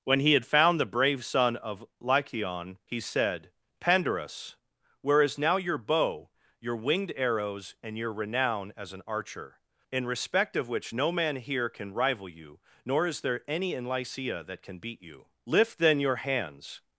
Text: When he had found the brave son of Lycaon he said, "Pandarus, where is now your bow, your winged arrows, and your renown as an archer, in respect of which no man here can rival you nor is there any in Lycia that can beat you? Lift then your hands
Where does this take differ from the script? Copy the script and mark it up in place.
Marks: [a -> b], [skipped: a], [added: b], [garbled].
When he had found the brave son of Lycaon he said, "Pandarus, where is now your bow, your winged arrows, and your renown as an archer, in respect of which no man here can rival you nor is there any in Lycia that can beat you? Lift then your hands